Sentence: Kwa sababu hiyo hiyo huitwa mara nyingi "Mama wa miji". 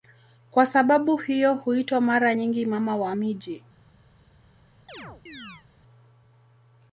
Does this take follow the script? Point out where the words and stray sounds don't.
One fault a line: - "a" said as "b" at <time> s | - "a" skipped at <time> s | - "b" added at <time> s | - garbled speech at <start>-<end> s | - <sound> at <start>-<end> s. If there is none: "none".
- "hiyo" skipped at 1.5 s
- chirp at 4.9-5.7 s